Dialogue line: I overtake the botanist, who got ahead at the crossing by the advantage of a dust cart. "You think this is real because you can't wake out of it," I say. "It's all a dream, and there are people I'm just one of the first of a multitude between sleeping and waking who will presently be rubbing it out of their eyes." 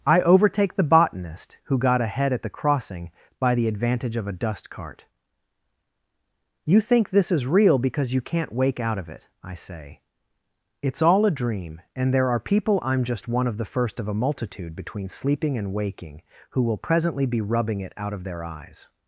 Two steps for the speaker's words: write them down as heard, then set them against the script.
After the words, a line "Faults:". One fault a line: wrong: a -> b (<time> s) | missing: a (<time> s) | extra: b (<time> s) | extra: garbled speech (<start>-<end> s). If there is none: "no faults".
I overtake the botanist, who got ahead at the crossing by the advantage of a dust cart. "You think this is real because you can't wake out of it," I say. "It's all a dream, and there are people I'm just one of the first of a multitude between sleeping and waking who will presently be rubbing it out of their eyes."
Faults:
no faults